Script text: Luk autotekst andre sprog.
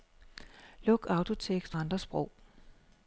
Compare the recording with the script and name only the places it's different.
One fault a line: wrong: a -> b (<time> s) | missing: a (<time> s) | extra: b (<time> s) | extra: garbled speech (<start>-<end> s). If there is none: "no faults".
no faults